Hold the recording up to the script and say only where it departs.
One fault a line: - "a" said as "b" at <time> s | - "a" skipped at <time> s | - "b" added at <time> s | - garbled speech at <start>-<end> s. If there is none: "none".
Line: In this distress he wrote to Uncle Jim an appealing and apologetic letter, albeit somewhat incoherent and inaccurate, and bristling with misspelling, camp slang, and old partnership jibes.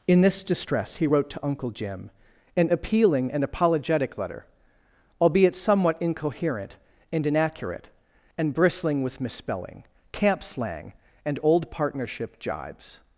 none